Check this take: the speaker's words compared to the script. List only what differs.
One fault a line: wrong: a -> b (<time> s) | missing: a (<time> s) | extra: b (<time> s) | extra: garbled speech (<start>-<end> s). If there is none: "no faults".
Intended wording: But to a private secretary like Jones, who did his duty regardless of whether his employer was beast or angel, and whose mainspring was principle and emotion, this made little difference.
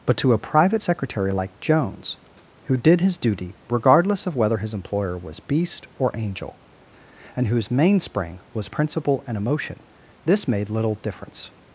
no faults